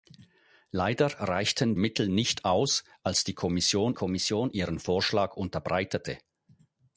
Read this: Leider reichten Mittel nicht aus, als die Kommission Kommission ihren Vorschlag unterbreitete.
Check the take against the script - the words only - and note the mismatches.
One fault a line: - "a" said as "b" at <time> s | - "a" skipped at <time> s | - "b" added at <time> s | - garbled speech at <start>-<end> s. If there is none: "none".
none